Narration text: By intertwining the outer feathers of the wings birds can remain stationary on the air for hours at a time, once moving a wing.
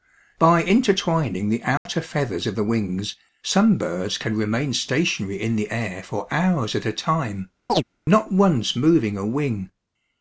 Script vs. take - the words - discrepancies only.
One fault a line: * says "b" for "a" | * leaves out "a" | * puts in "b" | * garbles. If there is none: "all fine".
* puts in "some"
* says "in" for "on"
* puts in "not"